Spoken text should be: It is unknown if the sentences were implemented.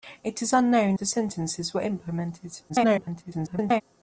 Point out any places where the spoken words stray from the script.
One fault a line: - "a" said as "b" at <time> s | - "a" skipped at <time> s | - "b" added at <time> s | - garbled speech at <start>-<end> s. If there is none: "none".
- "if" skipped at 1.0 s
- garbled speech at 2.7-3.8 s